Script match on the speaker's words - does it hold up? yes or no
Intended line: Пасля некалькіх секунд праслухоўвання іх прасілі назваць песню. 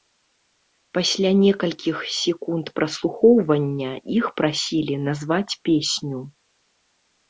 yes